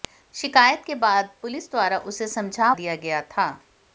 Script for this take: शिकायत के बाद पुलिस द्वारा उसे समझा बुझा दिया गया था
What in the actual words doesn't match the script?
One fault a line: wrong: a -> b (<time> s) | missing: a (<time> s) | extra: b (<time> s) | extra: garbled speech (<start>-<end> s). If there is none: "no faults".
missing: बुझा (2.7 s)